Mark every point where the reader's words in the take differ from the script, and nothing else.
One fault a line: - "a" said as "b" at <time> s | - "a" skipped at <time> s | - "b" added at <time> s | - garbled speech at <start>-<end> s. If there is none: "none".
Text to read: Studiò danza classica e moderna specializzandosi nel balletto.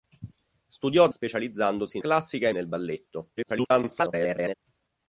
- "danza" said as "specializzandosi" at 1.1 s
- "moderna specializzandosi" skipped at 2.5 s
- garbled speech at 3.4-4.5 s